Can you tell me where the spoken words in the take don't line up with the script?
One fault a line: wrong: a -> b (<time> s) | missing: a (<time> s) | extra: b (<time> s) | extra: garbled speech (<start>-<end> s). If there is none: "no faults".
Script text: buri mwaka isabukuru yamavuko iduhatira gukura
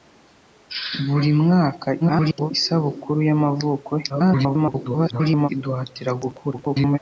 extra: garbled speech (2.0-2.5 s)
extra: garbled speech (4.1-5.5 s)
extra: garbled speech (6.5-7.0 s)